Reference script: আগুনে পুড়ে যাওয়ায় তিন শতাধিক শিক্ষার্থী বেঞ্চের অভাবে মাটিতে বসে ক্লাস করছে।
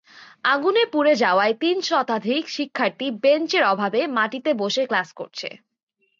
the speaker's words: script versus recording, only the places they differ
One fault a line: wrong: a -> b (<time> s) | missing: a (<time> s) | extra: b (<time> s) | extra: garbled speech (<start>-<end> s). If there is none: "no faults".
no faults